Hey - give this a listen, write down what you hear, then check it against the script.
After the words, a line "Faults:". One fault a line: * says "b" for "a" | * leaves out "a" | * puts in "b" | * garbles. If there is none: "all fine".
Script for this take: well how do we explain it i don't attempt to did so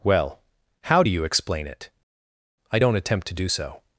well how do you explain it i don't attempt to do so
Faults:
* says "you" for "we"
* says "do" for "did"